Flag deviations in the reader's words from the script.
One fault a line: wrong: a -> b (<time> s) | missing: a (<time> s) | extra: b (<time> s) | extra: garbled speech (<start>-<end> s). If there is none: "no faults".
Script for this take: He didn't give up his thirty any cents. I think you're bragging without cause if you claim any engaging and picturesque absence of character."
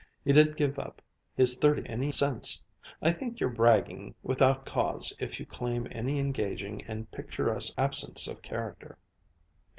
no faults